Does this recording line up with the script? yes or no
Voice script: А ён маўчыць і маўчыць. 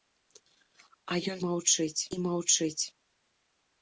yes